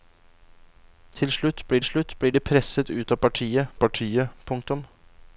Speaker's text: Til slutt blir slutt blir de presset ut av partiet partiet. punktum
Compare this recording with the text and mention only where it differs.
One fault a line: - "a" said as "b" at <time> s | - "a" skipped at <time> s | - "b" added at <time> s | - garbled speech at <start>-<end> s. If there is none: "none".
none